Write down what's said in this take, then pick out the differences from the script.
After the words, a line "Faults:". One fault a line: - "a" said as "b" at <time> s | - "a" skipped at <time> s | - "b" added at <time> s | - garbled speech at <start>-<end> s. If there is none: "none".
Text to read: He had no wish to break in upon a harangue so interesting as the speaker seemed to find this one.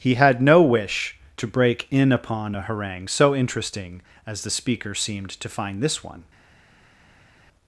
He had no wish to break in upon a harangue so interesting as the speaker seemed to find this one.
Faults:
none